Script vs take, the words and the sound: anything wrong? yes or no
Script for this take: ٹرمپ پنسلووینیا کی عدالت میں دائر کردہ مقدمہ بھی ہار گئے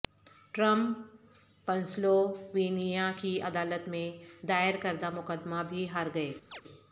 yes